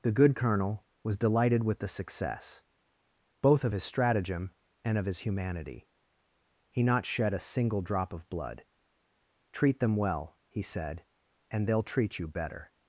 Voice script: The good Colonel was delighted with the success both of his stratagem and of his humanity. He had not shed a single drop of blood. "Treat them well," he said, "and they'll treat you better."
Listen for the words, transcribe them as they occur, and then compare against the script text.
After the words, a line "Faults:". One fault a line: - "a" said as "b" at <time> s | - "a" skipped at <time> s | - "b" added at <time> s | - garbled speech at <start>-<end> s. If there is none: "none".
The good Colonel was delighted with the success both of his stratagem and of his humanity. He not shed a single drop of blood. "Treat them well," he said, "and they'll treat you better."
Faults:
- "had" skipped at 6.8 s